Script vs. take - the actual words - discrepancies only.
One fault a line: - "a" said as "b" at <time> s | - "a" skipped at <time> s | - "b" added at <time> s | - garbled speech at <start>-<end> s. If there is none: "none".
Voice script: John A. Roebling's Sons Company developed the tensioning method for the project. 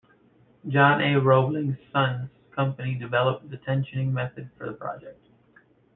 none